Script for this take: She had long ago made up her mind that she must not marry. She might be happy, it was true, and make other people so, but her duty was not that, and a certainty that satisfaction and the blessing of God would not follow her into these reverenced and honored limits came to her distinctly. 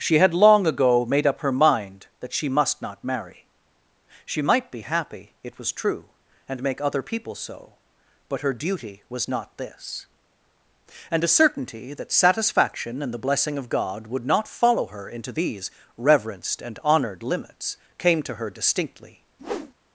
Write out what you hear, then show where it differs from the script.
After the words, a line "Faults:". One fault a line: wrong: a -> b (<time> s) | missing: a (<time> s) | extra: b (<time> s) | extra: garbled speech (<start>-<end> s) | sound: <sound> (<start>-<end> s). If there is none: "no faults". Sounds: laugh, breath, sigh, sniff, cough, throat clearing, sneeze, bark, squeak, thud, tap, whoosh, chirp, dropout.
She had long ago made up her mind that she must not marry. She might be happy, it was true, and make other people so, but her duty was not this, and a certainty that satisfaction and the blessing of God would not follow her into these reverenced and honored limits came to her distinctly.
Faults:
wrong: that -> this (9.6 s)
sound: whoosh (19.4-19.7 s)